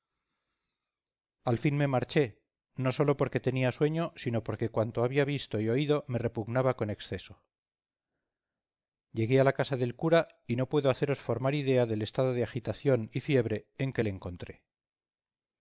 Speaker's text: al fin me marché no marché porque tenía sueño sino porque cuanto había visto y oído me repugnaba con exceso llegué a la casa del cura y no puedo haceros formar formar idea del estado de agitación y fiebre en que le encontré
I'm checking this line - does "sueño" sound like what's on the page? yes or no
yes